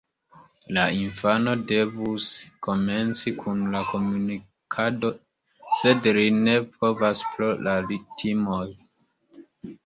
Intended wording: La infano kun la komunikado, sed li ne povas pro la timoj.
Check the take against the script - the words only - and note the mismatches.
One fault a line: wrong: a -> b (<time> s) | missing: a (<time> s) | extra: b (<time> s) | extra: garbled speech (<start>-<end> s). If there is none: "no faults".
extra: devus komenci (1.7 s)